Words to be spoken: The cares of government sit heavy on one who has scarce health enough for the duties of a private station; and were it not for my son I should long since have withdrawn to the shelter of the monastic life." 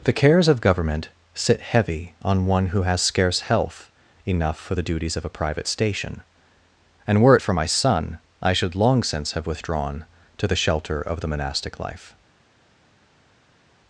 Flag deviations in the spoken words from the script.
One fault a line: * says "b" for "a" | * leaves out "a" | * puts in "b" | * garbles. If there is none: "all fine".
* leaves out "not"